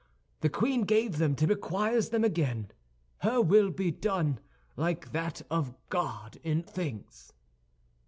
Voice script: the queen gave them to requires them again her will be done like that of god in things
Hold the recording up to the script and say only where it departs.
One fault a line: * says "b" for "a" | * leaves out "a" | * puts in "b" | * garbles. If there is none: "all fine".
all fine